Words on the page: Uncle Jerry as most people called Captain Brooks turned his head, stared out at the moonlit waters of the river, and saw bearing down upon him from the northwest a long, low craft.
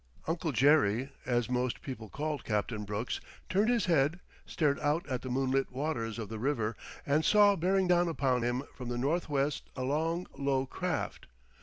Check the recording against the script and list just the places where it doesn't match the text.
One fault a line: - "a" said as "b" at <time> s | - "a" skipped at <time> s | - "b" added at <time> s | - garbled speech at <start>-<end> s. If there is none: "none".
none